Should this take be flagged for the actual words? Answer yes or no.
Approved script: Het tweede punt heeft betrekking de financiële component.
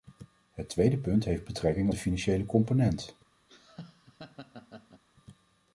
no